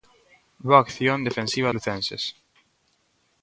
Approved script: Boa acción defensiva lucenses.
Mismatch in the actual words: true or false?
false